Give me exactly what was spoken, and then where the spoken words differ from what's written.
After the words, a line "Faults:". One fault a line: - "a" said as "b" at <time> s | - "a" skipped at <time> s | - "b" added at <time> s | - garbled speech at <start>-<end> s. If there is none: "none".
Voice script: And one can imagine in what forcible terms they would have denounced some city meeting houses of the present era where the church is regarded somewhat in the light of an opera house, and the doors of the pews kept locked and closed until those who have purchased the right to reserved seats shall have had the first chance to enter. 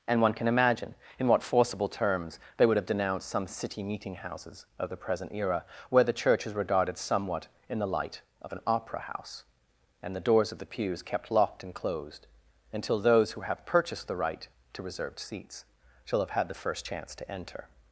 And one can imagine in what forcible terms they would have denounced some city meeting houses of the present era where the church is regarded somewhat in the light of an opera house, and the doors of the pews kept locked and closed until those who have purchased the right to reserved seats shall have had the first chance to enter.
Faults:
none